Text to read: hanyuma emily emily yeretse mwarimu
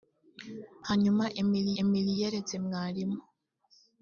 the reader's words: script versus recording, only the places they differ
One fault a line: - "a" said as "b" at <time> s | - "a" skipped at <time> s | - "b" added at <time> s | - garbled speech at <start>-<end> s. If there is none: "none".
none